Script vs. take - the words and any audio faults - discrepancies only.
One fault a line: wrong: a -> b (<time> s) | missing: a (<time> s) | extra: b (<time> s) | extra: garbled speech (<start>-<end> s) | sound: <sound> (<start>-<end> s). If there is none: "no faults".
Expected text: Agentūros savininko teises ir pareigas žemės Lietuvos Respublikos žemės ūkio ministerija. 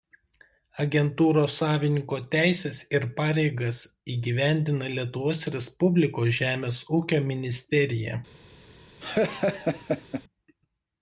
wrong: žemės -> įgyvendina (4.1 s)
sound: laugh (9.0-10.2 s)